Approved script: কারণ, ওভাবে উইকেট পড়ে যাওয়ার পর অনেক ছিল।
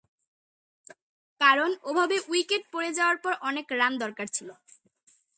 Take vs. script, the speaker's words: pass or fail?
fail